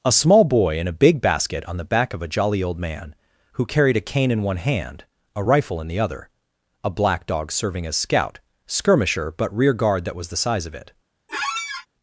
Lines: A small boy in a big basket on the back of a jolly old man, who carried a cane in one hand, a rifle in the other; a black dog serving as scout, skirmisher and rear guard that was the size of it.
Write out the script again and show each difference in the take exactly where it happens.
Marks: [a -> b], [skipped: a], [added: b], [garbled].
A small boy in a big basket on the back of a jolly old man, who carried a cane in one hand, a rifle in the other; a black dog serving as scout, skirmisher [and -> but] rear guard that was the size of it.